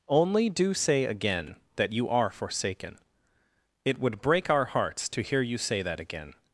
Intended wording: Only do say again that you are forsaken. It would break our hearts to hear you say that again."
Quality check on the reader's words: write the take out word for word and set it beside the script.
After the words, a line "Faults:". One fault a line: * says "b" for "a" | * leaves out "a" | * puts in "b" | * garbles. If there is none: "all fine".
Only do say again that you are forsaken. It would break our hearts to hear you say that again."
Faults:
all fine